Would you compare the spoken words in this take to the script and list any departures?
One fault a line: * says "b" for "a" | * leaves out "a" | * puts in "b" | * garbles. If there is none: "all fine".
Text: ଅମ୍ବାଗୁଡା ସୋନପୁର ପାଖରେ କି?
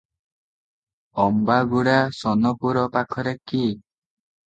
all fine